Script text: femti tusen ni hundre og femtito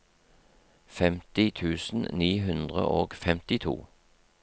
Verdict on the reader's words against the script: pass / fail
pass